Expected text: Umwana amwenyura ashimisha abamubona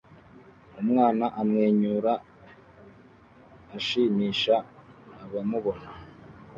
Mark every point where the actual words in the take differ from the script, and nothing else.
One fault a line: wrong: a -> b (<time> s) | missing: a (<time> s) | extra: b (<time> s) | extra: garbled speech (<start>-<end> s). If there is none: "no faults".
no faults